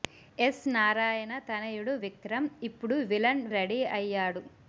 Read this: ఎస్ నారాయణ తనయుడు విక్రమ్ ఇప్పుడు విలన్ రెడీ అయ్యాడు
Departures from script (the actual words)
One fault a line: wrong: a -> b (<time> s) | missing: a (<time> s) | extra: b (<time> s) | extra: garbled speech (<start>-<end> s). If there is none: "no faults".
no faults